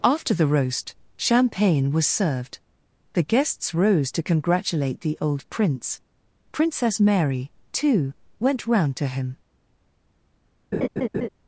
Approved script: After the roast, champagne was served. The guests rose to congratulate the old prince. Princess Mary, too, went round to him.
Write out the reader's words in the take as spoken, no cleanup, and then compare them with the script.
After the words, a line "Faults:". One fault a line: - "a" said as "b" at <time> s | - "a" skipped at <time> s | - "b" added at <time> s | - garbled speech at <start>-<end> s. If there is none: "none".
After the roast, champagne was served. The guests rose to congratulate the old prince. Princess Mary, too, went round to him.
Faults:
none